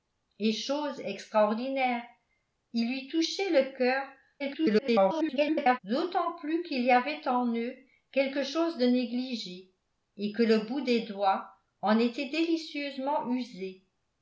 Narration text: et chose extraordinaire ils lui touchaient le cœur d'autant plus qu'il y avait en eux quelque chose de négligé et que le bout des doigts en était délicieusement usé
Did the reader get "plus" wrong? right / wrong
right